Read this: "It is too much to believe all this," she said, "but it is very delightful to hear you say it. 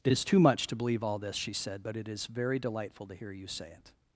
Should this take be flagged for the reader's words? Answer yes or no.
no